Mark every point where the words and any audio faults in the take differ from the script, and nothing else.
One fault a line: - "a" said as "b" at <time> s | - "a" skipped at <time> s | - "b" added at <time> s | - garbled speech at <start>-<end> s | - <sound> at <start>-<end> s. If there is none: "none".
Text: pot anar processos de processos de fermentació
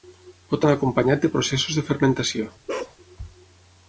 - "processos" said as "acompanyat" at 0.8 s
- bark at 2.7-3.0 s